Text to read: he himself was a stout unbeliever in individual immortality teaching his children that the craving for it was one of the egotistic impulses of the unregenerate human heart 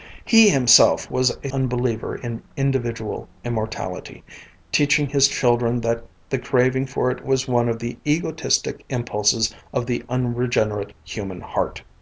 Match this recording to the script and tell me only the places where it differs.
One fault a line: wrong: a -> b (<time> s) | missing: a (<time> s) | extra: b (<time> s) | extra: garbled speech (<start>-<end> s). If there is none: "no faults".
missing: stout (1.5 s)